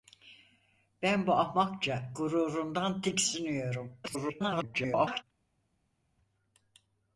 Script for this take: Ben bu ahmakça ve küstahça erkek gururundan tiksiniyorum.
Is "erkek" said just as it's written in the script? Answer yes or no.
no